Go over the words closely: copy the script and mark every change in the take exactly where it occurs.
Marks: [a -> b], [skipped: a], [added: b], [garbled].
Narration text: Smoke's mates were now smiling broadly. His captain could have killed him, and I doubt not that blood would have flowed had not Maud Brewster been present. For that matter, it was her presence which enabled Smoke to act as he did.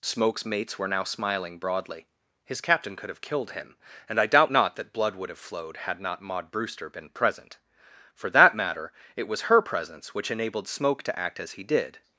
Smoke's mates were now smiling broadly. His captain could have killed him, and I doubt not that blood would have flowed had not Maud Brewster been present. For that matter, it was her presence which enabled Smoke to act as he did.